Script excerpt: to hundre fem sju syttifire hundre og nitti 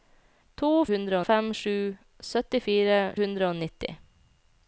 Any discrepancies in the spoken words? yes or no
no